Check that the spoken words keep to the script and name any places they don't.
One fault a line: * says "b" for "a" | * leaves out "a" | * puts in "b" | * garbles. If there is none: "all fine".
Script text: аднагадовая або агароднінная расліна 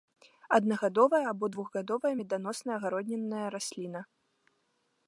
* puts in "двухгадовая меданосная"